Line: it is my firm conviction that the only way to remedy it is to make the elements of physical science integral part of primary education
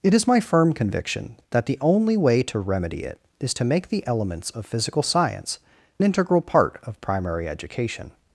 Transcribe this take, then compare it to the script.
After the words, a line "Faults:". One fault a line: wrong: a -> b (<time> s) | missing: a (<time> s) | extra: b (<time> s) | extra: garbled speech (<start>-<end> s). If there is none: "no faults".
it is my firm conviction that the only way to remedy it is to make the elements of physical science integral part of primary education
Faults:
no faults